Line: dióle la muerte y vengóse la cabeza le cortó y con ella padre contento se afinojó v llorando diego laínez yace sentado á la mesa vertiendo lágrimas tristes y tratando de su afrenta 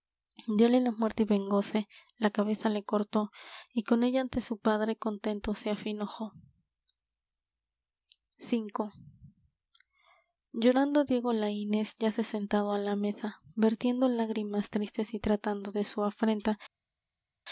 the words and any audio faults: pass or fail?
fail